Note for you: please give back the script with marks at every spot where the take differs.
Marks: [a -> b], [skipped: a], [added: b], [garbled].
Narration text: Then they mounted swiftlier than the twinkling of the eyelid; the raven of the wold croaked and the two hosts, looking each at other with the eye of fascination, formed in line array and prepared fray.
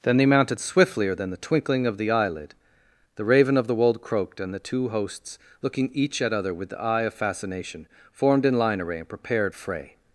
Then they mounted swiftlier than the twinkling of the eyelid; the raven of the wold croaked and the two hosts, looking each at other with the eye of fascination, formed in line array and prepared fray.